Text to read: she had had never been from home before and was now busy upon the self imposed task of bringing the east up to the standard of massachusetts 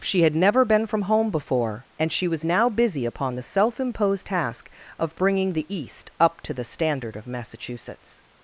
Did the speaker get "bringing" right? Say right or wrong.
right